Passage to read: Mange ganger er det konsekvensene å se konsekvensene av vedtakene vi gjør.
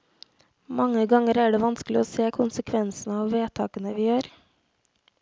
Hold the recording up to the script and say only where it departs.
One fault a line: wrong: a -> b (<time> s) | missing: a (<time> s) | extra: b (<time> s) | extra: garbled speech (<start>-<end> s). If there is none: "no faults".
wrong: konsekvensene -> vanskelig (1.6 s)